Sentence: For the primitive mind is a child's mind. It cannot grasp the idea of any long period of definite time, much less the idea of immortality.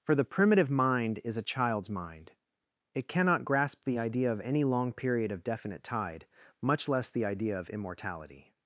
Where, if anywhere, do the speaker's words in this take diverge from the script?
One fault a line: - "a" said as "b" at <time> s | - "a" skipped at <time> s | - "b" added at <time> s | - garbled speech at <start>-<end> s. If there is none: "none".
- "time" said as "tide" at 5.8 s